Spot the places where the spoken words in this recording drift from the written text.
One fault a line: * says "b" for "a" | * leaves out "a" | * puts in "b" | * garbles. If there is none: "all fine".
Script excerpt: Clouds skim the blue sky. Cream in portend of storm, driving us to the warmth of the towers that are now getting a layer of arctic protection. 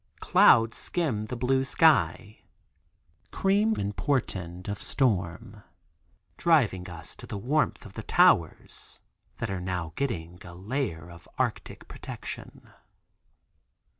all fine